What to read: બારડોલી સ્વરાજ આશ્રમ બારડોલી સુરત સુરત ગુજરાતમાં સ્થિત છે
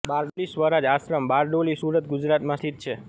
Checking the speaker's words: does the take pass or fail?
fail